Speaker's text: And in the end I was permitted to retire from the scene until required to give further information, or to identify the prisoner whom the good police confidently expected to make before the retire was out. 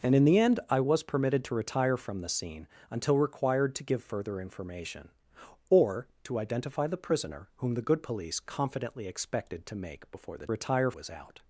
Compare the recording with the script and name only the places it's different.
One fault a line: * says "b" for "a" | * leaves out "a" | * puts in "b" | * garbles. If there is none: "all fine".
all fine